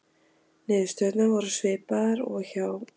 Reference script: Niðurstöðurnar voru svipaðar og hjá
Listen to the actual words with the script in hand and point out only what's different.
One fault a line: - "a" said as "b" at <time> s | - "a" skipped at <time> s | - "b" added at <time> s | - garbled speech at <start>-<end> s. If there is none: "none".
none